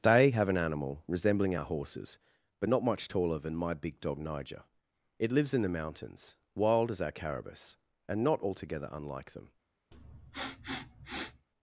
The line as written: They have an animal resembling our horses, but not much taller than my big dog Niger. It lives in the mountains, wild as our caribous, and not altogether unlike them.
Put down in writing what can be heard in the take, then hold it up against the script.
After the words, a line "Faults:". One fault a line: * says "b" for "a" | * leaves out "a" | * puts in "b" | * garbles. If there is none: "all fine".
They have an animal resembling our horses, but not much taller than my big dog Niger. It lives in the mountains, wild as our caribous, and not altogether unlike them.
Faults:
all fine